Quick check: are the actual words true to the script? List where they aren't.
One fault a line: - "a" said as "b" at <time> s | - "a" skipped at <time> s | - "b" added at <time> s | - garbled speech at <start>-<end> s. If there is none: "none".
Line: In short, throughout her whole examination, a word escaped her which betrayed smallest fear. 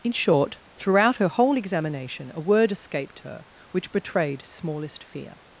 none